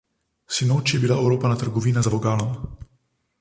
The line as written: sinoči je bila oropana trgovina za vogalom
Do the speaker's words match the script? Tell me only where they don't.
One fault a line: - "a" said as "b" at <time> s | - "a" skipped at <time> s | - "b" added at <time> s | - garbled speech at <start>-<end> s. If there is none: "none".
none